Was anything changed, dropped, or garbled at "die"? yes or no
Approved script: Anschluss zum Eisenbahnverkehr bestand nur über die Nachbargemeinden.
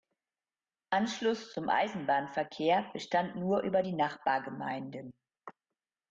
no